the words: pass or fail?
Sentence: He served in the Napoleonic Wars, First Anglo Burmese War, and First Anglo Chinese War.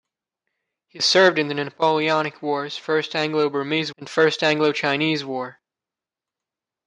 fail